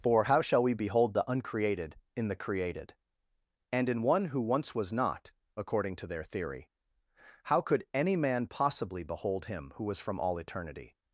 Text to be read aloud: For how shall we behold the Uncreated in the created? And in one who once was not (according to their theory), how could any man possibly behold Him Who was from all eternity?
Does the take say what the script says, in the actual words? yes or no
yes